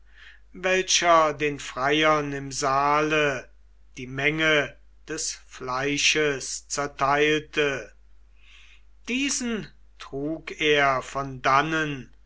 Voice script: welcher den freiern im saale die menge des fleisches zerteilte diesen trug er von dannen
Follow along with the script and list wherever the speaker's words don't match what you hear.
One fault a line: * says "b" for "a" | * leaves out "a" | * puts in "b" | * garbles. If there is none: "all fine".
all fine